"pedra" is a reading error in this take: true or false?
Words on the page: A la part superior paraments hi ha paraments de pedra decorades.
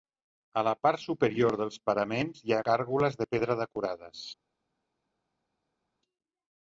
false